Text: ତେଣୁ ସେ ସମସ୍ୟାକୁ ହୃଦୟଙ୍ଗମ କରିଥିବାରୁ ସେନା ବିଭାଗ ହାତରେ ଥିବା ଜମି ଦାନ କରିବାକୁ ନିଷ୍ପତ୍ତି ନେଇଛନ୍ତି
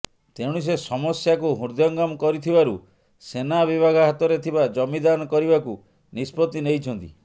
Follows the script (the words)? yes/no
yes